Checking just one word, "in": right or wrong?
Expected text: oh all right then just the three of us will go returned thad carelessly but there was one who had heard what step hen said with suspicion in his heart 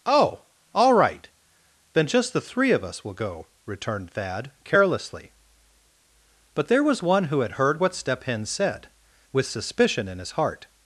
right